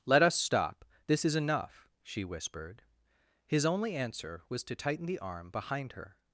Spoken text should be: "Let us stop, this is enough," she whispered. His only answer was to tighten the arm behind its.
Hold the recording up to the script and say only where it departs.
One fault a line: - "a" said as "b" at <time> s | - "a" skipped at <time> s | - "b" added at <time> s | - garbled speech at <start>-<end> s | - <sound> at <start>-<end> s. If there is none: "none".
- "its" said as "her" at 5.9 s